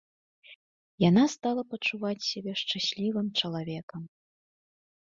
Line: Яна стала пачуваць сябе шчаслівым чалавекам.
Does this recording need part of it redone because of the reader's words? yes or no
no